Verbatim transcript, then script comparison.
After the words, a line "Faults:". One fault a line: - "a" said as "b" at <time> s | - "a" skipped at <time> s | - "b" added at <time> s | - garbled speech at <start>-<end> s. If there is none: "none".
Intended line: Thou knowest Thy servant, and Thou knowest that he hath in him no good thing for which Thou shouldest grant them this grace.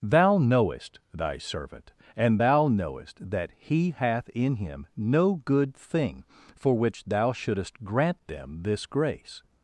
Thou knowest Thy servant, and Thou knowest that he hath in him no good thing for which Thou shouldest grant them this grace.
Faults:
none